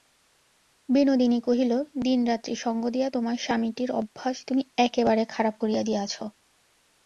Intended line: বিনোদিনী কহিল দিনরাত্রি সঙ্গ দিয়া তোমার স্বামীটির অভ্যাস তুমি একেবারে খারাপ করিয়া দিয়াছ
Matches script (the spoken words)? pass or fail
pass